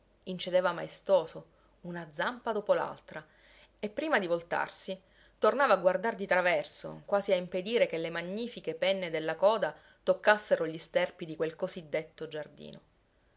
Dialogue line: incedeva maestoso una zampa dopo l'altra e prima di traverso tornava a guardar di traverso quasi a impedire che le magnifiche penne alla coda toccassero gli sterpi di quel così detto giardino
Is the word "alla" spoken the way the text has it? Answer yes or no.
no